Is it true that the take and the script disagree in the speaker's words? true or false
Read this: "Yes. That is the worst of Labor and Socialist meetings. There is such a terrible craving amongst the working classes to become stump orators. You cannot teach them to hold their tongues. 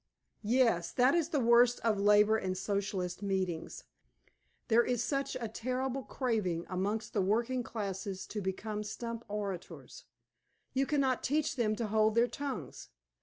false